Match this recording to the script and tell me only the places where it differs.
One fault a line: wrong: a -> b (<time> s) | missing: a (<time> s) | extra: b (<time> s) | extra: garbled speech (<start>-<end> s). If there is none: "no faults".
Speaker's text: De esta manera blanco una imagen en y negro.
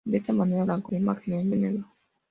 no faults